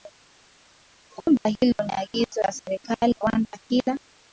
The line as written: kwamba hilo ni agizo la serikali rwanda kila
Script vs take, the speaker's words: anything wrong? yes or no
no